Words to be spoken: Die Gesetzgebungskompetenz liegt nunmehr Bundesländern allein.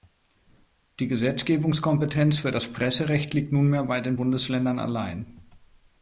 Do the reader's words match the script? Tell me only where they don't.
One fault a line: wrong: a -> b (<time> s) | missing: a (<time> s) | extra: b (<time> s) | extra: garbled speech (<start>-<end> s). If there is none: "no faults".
extra: für das Presserecht (2.4 s)
extra: bei den (3.8 s)